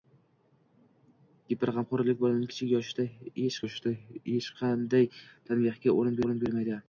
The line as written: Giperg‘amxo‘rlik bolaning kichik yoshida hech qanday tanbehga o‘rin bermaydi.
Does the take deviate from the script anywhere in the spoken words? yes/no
yes